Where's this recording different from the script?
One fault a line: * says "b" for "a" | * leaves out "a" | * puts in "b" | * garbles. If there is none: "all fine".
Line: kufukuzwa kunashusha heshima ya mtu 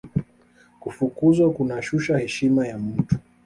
all fine